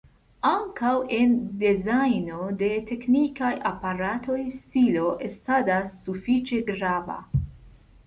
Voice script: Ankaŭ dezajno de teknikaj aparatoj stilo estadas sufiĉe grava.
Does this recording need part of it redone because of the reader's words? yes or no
yes